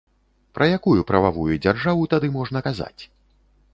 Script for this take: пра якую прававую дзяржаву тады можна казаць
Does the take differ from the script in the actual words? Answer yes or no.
no